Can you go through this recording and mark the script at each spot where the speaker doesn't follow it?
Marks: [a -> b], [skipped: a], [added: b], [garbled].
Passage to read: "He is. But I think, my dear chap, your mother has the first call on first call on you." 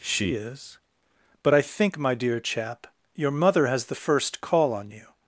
["He -> She] is. But I think, my dear chap, your mother has the first call on [skipped: first call on] you."